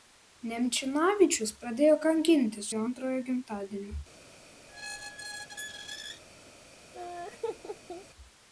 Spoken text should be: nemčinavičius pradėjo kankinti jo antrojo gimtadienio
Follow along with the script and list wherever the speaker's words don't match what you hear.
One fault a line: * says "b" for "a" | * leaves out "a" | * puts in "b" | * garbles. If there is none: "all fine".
all fine